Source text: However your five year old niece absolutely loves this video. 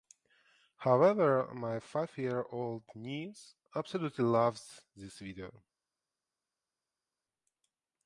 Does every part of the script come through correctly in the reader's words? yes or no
no